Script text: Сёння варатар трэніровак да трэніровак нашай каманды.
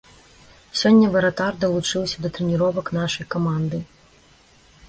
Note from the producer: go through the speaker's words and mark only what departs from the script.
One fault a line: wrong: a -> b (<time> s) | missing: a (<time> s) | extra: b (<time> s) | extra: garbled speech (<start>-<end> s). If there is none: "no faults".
wrong: трэніровак -> далучыўся (1.6 s)